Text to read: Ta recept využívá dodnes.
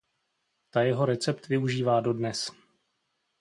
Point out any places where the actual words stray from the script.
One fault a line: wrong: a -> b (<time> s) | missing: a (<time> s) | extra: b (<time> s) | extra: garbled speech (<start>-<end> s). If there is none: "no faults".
extra: jeho (0.8 s)